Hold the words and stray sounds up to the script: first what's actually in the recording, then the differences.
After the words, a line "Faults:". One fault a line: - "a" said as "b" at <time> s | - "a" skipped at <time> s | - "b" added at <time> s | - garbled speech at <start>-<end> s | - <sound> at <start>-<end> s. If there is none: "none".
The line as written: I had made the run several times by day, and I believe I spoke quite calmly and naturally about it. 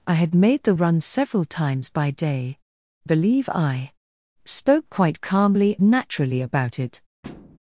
I had made the run several times by day, believe I spoke quite calmly naturally about it.
Faults:
- "and I" skipped at 2.6 s
- "and" skipped at 5.8 s
- thud at 7.2-7.6 s